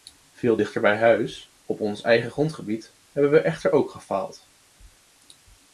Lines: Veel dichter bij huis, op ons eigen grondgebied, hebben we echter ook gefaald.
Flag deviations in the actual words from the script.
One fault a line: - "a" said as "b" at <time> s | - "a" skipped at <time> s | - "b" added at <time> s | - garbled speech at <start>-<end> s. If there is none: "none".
none